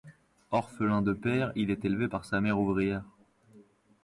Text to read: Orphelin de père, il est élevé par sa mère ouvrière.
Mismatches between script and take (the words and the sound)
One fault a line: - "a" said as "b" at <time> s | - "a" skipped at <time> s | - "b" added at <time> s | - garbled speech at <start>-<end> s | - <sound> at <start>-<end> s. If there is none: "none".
none